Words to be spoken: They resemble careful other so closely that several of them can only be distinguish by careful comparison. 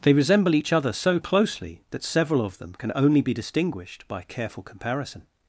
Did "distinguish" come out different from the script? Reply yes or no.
yes